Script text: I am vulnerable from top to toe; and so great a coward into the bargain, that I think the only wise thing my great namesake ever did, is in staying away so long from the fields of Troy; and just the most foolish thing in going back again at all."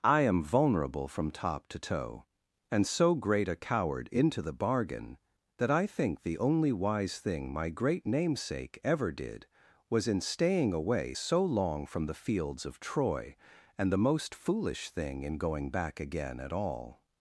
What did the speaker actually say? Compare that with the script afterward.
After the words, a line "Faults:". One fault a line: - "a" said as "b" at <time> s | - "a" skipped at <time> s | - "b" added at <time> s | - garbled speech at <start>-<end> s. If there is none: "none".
I am vulnerable from top to toe; and so great a coward into the bargain, that I think the only wise thing my great namesake ever did, was in staying away so long from the fields of Troy; and the most foolish thing in going back again at all."
Faults:
- "is" said as "was" at 9.9 s
- "just" skipped at 13.9 s